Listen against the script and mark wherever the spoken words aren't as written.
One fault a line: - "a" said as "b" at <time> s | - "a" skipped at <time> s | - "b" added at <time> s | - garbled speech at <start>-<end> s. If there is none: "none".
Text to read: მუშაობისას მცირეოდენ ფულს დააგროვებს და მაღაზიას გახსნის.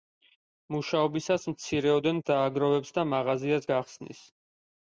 - "ფულს" skipped at 2.2 s